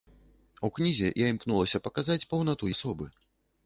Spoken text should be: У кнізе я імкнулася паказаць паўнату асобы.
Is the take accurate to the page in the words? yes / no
yes